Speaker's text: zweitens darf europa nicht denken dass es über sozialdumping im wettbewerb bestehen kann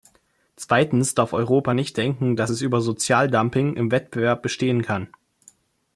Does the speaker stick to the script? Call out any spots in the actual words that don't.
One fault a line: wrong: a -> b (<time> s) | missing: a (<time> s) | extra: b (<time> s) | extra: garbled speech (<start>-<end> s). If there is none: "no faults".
no faults